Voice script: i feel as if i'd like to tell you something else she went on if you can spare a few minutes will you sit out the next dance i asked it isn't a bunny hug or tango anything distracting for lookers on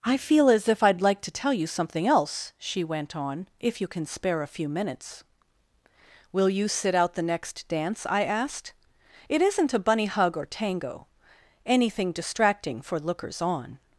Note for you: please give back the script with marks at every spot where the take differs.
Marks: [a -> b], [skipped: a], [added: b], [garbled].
i feel as if i'd like to tell you something else she went on if you can spare a few minutes will you sit out the next dance i asked it isn't a bunny hug or tango anything distracting for lookers on